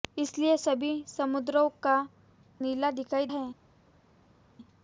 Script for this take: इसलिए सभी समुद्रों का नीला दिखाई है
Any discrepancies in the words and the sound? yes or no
no